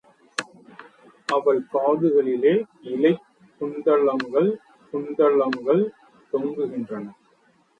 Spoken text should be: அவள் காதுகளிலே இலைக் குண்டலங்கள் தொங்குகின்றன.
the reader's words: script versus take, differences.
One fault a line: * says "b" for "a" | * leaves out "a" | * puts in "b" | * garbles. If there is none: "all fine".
* puts in "குண்டலங்கள்"